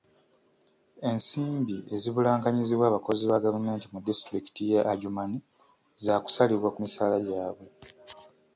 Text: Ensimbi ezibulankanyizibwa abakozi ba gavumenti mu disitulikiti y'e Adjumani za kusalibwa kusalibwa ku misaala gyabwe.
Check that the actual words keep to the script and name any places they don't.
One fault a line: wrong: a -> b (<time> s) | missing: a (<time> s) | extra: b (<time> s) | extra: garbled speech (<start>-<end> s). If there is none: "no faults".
missing: kusalibwa (6.7 s)